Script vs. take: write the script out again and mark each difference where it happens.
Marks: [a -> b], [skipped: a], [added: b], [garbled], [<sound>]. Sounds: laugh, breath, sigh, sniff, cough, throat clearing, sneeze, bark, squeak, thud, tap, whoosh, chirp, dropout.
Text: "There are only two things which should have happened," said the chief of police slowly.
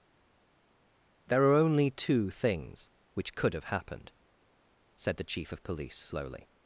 "There are only two things which [should -> could] have happened," said the chief of police slowly.